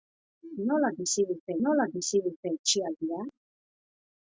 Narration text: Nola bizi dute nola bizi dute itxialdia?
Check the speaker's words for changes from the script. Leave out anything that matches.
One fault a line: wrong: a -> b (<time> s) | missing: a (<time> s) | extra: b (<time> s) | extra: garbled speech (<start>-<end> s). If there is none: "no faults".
no faults